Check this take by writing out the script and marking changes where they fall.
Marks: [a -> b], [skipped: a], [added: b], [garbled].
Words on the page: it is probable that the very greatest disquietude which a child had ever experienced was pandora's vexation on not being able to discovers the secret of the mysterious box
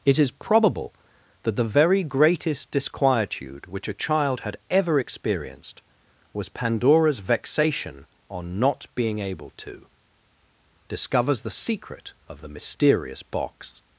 it is probable that the very greatest disquietude which a child had ever experienced was pandora's vexation on not being able to discovers the secret of the mysterious box